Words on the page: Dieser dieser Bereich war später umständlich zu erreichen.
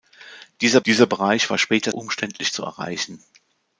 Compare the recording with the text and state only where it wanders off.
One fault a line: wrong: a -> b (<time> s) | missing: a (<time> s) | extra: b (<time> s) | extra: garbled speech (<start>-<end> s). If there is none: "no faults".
no faults